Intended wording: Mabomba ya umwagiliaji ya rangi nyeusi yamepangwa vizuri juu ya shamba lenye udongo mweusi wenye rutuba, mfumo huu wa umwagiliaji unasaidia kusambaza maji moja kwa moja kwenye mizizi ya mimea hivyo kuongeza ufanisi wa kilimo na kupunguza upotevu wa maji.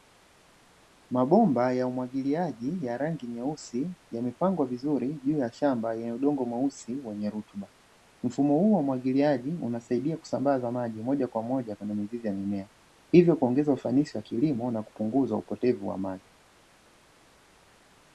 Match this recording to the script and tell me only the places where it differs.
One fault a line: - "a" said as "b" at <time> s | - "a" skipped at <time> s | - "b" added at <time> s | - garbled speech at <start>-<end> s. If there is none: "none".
none